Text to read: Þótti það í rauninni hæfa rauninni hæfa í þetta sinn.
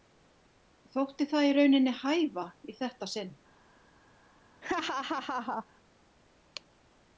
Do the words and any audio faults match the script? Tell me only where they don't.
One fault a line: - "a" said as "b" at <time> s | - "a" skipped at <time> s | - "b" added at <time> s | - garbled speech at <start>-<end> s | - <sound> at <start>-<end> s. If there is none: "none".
- "rauninni hæfa" skipped at 2.5 s
- laugh at 4.6-5.7 s